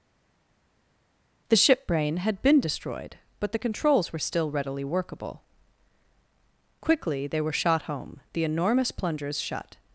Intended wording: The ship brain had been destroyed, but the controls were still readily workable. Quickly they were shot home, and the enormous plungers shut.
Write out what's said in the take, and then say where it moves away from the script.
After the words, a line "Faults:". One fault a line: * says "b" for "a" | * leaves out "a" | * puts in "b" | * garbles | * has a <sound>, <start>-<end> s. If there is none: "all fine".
The ship brain had been destroyed, but the controls were still readily workable. Quickly they were shot home, the enormous plungers shut.
Faults:
* leaves out "and"